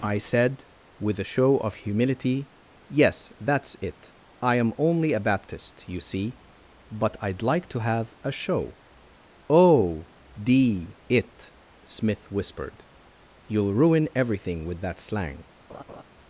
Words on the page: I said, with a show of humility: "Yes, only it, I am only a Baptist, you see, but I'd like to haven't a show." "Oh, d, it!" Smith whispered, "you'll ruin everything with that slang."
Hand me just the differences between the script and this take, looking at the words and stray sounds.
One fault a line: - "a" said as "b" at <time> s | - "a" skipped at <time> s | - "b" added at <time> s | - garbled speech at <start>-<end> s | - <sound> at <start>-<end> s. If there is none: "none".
- "only" said as "that's" at 3.4 s
- "haven't" said as "have" at 7.8 s
- laugh at 15.7-16.0 s